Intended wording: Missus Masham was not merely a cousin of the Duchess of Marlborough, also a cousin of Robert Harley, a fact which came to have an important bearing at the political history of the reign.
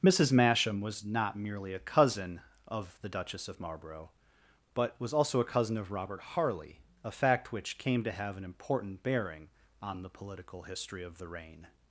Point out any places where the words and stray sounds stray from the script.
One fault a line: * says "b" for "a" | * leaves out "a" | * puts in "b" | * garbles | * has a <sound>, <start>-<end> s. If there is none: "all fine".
* puts in "but was"
* says "on" for "at"